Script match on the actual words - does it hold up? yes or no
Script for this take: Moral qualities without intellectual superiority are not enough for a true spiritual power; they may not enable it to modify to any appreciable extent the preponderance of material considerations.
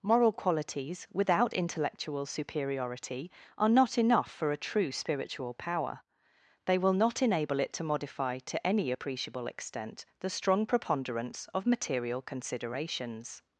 no